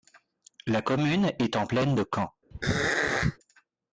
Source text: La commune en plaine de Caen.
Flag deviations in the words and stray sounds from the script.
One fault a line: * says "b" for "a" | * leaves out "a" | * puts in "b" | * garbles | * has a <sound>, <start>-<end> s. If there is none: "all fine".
* puts in "est"
* has a throat clearing, 2.5-3.4 s